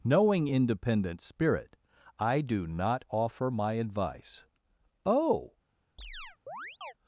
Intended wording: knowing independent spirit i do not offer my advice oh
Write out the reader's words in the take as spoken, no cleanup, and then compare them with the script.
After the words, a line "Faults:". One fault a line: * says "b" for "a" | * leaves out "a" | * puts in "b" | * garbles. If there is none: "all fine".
knowing independent spirit i do not offer my advice oh
Faults:
all fine